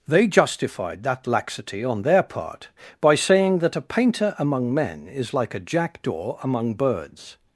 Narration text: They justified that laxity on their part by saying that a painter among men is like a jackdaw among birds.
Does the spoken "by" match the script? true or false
true